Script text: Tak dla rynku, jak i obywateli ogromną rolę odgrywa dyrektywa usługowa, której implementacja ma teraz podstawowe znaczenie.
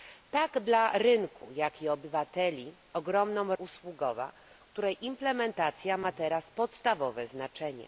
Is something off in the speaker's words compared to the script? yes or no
yes